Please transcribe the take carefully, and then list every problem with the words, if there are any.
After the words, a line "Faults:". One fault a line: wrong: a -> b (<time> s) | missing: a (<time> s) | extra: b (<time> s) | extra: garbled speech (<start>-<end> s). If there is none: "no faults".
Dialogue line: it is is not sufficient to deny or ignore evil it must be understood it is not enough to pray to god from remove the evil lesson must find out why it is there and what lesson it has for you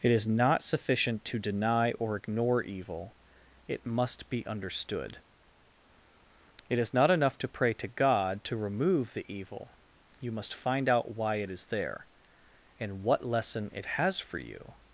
it is not sufficient to deny or ignore evil it must be understood it is not enough to pray to god to remove the evil you must find out why it is there and what lesson it has for you
Faults:
missing: is (0.3 s)
wrong: from -> to (8.4 s)
wrong: lesson -> you (10.2 s)